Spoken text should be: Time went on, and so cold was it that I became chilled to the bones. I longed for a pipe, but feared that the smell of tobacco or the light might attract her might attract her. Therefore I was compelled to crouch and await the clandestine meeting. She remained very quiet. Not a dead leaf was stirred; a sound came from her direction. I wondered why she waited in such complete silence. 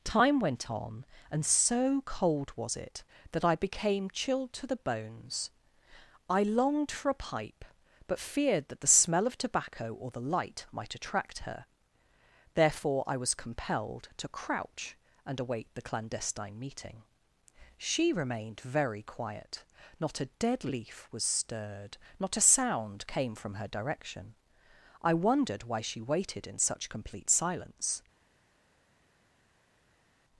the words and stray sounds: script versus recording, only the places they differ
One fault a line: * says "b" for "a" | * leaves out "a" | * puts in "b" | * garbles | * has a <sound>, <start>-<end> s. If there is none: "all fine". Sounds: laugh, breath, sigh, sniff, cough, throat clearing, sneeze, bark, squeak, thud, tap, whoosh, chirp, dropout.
* leaves out "might attract her"
* puts in "not"